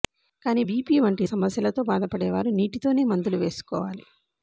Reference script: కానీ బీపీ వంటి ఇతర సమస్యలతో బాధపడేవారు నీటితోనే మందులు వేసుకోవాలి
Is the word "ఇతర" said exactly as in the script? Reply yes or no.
no